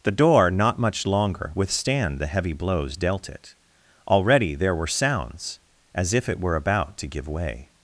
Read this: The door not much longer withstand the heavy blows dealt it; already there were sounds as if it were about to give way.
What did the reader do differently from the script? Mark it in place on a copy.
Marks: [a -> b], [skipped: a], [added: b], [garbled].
The door not much longer withstand the heavy blows dealt it; already there were sounds as if it were about to give way.